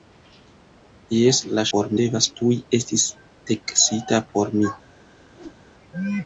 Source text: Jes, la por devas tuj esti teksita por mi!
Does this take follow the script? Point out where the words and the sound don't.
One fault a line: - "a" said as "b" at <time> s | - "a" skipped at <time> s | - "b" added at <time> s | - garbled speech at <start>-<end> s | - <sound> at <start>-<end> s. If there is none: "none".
- whoosh at 5.3-5.6 s